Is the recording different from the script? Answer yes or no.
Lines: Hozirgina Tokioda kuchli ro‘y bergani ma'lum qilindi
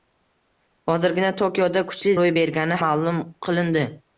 no